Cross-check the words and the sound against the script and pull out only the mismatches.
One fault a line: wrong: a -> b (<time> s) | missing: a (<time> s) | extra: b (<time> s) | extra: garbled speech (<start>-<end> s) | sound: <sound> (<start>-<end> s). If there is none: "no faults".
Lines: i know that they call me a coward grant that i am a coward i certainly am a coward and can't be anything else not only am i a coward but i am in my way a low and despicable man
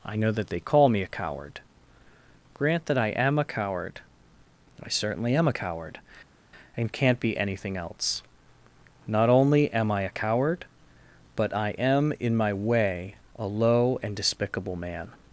no faults